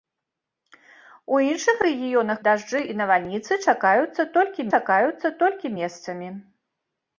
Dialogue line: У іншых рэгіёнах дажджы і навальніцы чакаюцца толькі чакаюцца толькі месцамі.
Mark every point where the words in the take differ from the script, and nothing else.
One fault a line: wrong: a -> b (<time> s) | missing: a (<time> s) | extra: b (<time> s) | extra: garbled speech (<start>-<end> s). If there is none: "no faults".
no faults